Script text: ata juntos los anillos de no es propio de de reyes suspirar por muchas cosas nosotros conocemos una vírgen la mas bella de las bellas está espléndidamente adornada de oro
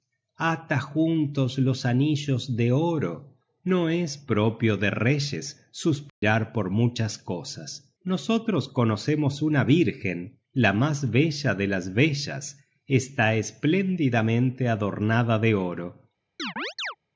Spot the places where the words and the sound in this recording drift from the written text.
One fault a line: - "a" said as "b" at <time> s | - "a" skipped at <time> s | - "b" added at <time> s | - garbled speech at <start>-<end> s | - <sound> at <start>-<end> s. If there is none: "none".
- "oro" added at 2.7 s
- "de" skipped at 4.9 s
- dropout at 6.1-6.2 s
- chirp at 16.4-17.0 s